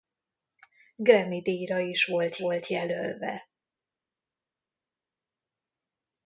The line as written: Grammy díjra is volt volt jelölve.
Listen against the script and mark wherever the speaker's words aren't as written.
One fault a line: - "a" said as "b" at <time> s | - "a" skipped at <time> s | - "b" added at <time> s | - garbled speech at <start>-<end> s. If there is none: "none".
none